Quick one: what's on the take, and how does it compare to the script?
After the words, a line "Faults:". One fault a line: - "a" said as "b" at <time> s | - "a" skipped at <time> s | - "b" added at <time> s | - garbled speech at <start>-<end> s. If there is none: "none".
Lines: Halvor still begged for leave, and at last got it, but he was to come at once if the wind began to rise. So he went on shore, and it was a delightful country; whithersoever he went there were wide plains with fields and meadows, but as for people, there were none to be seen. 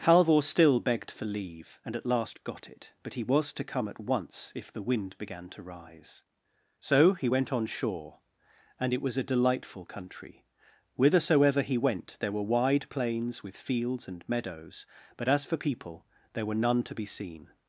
Halvor still begged for leave, and at last got it, but he was to come at once if the wind began to rise. So he went on shore, and it was a delightful country; whithersoever he went there were wide plains with fields and meadows, but as for people, there were none to be seen.
Faults:
none